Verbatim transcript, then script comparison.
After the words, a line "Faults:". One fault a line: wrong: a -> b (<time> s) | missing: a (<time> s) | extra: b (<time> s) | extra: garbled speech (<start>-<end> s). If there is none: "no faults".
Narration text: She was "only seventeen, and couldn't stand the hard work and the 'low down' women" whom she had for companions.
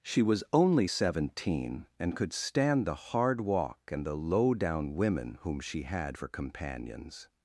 She was "only seventeen, and could stand the hard walk and the 'low down' women" whom she had for companions.
Faults:
wrong: couldn't -> could (2.2 s)
wrong: work -> walk (3.4 s)